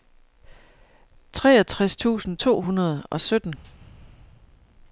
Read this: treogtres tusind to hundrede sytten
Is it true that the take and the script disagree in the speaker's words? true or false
true